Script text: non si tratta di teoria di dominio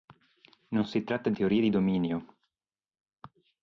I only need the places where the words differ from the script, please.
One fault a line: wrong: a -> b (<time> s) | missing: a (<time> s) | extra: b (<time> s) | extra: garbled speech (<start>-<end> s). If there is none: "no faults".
no faults